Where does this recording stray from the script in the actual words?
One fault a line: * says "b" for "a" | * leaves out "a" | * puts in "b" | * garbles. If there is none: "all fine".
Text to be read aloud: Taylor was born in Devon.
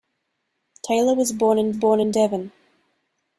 * puts in "born in"